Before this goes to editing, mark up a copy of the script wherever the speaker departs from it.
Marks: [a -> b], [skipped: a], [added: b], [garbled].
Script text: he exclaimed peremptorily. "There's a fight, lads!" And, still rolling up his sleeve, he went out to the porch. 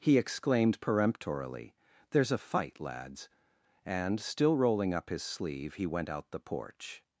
he exclaimed peremptorily. "There's a fight, lads!" And, still rolling up his sleeve, he went out [skipped: to] the porch.